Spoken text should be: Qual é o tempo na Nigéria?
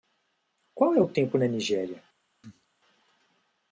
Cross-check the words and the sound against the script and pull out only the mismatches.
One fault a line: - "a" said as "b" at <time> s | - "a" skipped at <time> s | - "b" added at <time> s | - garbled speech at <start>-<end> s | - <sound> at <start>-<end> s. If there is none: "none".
- cough at 2.4-2.7 s